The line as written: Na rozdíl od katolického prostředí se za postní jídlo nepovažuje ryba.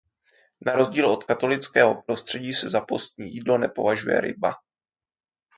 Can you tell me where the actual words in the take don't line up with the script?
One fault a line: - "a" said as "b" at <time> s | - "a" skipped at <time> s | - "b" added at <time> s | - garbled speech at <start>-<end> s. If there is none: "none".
none